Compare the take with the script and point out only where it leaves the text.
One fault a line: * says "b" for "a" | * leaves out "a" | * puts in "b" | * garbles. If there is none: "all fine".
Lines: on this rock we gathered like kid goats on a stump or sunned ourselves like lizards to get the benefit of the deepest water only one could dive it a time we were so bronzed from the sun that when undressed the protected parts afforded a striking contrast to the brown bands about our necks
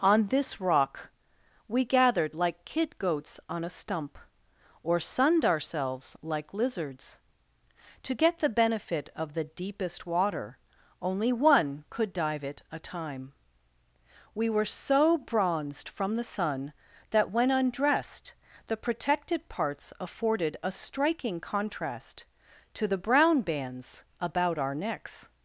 all fine